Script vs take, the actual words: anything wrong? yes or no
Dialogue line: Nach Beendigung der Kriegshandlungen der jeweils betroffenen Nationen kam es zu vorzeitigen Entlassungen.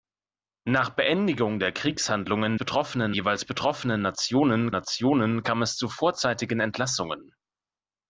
yes